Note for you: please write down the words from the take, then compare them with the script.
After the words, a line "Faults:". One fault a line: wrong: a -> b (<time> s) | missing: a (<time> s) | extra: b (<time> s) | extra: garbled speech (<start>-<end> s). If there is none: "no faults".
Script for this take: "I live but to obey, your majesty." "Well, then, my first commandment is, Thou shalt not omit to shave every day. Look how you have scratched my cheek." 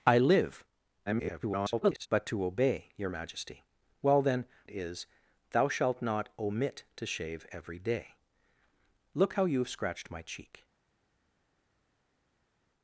"I live [garbled] but to obey, your majesty." "Well, then, is, Thou shalt not omit to shave every day. Look how you have scratched my cheek."
Faults:
extra: garbled speech (1.1-2.1 s)
missing: my first commandment (4.5 s)